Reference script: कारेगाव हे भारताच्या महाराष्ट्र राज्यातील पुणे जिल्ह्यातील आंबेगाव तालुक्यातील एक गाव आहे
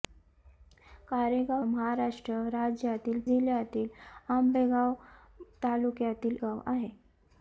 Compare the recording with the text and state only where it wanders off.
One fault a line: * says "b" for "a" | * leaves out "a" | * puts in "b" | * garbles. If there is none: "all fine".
* leaves out "हे भारताच्या"
* leaves out "पुणे"
* leaves out "एक"